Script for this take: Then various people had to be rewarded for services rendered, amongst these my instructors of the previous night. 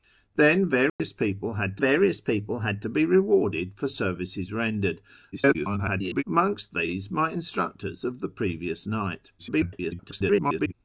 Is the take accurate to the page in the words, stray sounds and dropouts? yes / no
no